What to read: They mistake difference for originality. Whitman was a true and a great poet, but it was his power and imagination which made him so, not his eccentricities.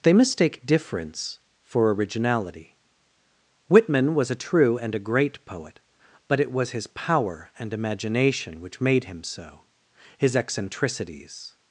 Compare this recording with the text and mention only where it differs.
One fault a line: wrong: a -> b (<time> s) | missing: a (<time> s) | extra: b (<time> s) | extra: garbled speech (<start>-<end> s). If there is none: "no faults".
missing: not (9.6 s)